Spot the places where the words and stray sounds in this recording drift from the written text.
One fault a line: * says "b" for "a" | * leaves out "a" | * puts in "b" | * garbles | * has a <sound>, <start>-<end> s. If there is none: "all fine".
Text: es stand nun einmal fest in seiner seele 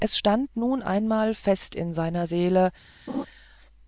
* has a laugh, 3.1-3.3 s